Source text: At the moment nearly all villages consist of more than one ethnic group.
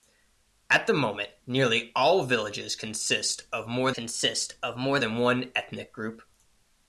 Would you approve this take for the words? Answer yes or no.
no